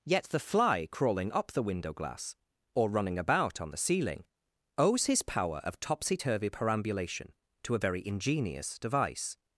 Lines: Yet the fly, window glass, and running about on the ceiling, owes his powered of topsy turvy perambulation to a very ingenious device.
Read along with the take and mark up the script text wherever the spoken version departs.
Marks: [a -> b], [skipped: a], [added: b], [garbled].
Yet the fly, [added: crawling up the] window glass, [and -> or] running about on the ceiling, owes his [powered -> power] of topsy turvy perambulation to a very ingenious device.